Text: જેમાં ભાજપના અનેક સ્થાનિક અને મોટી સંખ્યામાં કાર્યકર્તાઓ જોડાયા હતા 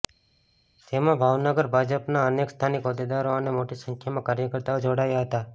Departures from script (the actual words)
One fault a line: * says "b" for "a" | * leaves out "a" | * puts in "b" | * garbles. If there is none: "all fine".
* puts in "ભાવનગર"
* puts in "હોદ્દેદારો"